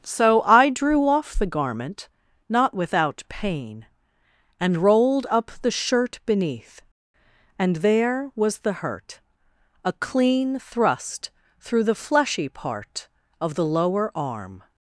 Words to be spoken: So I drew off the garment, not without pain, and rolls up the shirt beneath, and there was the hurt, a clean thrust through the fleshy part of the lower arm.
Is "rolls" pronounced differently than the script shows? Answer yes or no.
yes